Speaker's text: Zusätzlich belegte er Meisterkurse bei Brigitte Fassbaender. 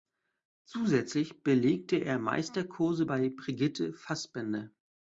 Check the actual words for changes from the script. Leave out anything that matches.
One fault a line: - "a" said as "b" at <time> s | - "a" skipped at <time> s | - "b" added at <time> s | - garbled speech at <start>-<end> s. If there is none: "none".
none